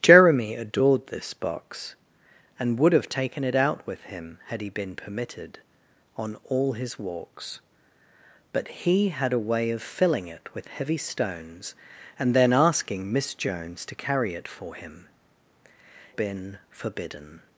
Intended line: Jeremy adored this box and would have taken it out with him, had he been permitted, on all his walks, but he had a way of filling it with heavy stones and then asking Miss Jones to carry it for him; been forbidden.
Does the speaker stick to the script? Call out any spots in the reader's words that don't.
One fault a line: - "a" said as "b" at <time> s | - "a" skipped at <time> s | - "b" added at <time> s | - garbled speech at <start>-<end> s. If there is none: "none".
none